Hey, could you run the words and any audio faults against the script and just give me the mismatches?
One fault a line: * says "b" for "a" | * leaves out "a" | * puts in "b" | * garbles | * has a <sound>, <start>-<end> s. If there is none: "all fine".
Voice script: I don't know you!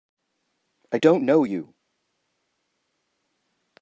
all fine